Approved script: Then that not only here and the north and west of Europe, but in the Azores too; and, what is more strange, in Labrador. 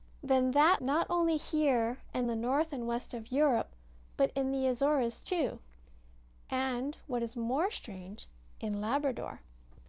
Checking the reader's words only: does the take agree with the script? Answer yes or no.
yes